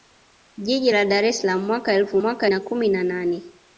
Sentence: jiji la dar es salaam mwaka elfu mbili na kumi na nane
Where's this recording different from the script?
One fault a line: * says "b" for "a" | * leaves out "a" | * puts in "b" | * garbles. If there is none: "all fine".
* says "mwaka" for "mbili"